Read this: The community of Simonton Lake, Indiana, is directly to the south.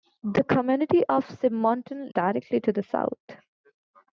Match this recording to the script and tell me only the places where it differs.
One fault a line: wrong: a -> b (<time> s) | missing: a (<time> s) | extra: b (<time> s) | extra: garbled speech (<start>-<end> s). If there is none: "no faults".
missing: Lake Indiana is (2.1 s)